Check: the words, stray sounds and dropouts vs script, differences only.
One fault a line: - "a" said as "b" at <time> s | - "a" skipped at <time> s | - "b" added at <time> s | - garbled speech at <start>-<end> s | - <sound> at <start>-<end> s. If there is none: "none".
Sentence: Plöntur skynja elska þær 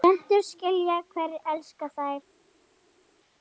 - "hverjir" added at 1.2 s